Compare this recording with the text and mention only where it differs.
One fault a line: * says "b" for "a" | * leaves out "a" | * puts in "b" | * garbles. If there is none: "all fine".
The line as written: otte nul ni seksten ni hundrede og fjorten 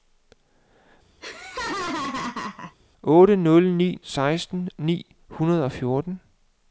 all fine